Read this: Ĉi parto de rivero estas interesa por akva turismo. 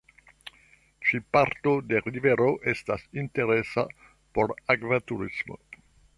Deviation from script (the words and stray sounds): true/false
false